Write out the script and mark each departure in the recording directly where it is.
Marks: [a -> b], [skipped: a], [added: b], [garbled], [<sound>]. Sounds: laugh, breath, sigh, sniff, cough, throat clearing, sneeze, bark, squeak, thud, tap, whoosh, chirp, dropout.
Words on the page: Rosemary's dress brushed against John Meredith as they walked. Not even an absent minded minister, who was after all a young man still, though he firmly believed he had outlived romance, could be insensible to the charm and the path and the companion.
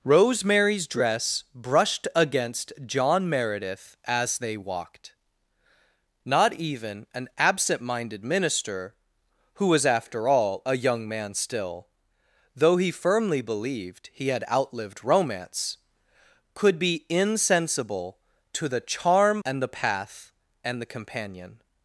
Rosemary's dress brushed against John Meredith as they walked. Not even an absent minded minister, who was after all a young man still, though he firmly believed he had outlived romance, could be insensible to the charm and the path and the companion.